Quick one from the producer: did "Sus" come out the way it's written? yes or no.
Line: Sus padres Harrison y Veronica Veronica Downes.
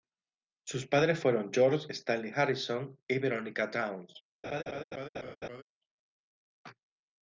yes